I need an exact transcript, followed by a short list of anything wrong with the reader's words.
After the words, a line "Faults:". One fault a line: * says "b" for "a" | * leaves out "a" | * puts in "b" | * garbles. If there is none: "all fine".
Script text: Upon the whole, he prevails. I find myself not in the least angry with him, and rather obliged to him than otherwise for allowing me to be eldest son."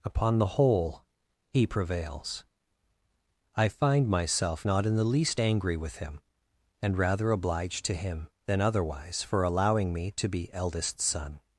Upon the whole, he prevails. I find myself not in the least angry with him, and rather obliged to him than otherwise for allowing me to be eldest son."
Faults:
all fine